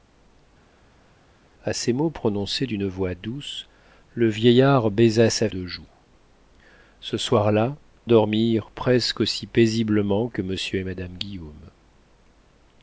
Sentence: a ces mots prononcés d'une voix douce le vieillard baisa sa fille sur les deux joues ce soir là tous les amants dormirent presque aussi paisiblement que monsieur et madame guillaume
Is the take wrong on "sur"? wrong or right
wrong